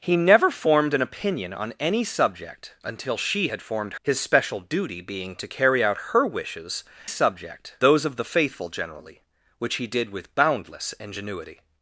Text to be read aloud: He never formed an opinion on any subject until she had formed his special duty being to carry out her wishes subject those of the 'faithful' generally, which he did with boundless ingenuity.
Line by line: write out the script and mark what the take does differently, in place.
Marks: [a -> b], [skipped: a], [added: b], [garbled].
He never formed an opinion on any subject until she had formed his special duty being to carry out her wishes subject those of the 'faithful' generally, which he did with boundless ingenuity.